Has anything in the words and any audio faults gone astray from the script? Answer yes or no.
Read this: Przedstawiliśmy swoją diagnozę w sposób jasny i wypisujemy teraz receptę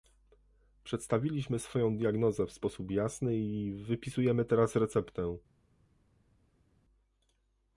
no